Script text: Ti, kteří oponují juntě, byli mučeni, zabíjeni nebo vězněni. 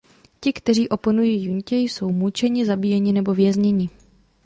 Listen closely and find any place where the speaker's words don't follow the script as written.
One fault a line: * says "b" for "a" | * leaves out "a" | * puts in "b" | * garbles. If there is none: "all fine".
* says "jsou" for "byli"